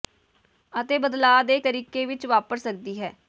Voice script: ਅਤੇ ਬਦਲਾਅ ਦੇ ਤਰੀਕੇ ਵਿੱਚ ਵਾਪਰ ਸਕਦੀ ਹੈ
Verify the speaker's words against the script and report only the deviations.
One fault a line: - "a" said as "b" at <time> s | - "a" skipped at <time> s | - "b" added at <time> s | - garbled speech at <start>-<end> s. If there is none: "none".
none